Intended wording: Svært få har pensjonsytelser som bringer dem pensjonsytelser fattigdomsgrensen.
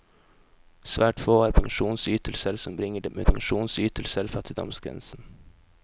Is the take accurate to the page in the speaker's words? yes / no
yes